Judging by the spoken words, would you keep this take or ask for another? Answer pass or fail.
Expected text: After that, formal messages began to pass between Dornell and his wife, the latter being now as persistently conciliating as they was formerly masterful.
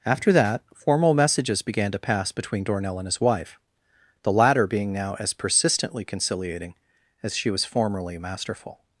fail